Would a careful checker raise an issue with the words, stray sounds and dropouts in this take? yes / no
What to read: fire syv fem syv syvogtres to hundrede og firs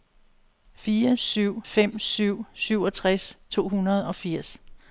no